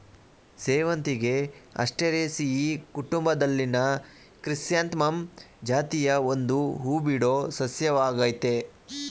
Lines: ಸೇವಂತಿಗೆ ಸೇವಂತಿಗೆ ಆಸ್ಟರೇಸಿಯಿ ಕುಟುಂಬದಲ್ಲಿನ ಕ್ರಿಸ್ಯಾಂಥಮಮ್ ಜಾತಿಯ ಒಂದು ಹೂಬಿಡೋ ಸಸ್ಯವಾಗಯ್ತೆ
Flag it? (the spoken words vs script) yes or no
yes